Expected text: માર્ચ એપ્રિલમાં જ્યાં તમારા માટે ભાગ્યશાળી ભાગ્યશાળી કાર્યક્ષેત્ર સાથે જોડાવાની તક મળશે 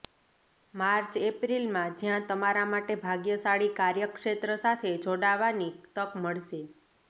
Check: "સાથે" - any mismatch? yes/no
no